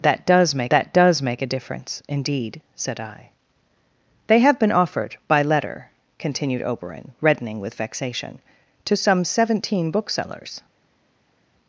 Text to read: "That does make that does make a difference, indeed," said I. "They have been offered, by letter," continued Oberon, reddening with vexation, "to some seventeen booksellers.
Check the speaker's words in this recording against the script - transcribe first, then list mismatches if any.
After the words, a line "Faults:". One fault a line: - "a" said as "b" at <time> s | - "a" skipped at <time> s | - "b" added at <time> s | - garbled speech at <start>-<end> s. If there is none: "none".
"That does make that does make a difference, indeed," said I. "They have been offered, by letter," continued Oberon, reddening with vexation, "to some seventeen booksellers.
Faults:
none